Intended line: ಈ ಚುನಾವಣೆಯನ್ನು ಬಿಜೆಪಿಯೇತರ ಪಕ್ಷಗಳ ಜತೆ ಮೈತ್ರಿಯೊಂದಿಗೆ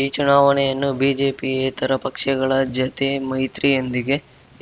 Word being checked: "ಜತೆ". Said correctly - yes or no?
yes